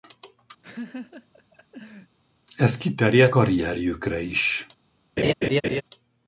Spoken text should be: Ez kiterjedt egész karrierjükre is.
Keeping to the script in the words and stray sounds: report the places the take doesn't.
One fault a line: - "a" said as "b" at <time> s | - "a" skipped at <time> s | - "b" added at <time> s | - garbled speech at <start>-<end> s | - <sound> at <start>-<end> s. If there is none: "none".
- laugh at 0.6-2.2 s
- "egész" skipped at 3.4 s
- laugh at 5.2-5.8 s